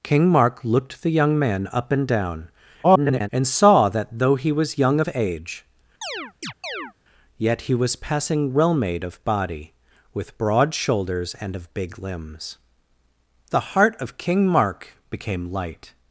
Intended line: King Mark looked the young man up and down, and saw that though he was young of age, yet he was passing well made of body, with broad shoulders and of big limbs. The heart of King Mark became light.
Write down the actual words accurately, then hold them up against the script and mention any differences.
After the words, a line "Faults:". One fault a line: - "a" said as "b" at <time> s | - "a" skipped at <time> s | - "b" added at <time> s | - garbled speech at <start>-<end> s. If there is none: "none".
King Mark looked the young man up and down, [garbled] and saw that though he was young of age, yet he was passing well made of body, with broad shoulders and of big limbs. The heart of King Mark became light.
Faults:
- garbled speech at 2.8-3.3 s